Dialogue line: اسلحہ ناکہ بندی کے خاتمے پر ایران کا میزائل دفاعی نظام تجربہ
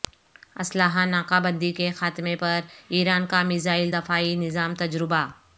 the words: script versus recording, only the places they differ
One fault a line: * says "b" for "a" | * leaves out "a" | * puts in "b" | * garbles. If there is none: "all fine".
all fine